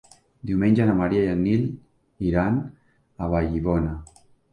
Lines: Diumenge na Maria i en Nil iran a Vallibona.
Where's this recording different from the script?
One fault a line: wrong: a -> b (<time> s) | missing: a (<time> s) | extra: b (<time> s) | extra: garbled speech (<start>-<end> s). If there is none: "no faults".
no faults